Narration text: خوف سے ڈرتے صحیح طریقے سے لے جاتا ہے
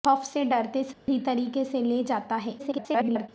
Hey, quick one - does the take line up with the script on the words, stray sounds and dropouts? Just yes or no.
no